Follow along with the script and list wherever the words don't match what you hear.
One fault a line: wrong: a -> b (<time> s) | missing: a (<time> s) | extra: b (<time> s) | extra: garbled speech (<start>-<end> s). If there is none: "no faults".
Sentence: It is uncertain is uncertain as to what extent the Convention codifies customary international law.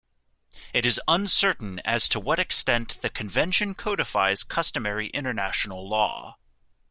missing: is uncertain (1.8 s)